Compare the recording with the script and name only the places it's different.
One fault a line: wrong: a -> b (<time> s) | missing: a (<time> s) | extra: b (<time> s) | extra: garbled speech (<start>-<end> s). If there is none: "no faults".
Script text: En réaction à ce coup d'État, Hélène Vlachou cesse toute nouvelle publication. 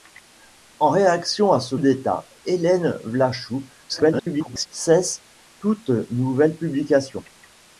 missing: coup (1.8 s)
extra: garbled speech (3.9-4.7 s)